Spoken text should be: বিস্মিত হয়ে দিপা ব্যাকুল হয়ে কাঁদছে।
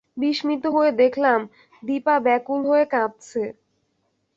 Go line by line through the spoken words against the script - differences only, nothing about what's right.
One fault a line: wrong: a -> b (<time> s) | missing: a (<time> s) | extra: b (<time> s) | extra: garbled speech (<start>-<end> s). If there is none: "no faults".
extra: দেখলাম (1.0 s)